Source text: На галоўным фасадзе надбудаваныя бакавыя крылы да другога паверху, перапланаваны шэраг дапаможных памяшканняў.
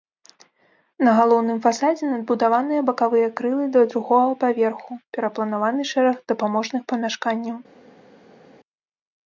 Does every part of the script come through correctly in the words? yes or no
yes